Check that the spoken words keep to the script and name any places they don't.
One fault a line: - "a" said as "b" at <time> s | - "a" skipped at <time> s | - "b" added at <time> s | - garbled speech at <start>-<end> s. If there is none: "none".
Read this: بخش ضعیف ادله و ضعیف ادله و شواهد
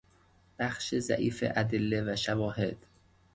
- "ضعیف ادله و" skipped at 2.1 s